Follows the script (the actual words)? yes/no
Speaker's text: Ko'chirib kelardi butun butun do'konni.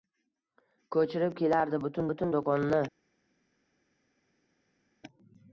yes